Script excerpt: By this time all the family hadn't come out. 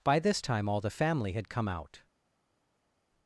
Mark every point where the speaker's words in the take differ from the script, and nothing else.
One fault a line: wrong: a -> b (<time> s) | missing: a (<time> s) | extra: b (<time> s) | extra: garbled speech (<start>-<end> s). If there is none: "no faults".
wrong: hadn't -> had (1.3 s)